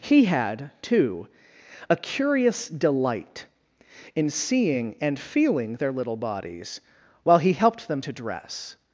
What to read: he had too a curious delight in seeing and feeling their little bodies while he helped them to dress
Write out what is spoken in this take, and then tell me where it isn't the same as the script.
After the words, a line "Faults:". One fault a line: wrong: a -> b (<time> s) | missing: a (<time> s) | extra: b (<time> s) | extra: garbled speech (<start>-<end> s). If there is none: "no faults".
he had too a curious delight in seeing and feeling their little bodies while he helped them to dress
Faults:
no faults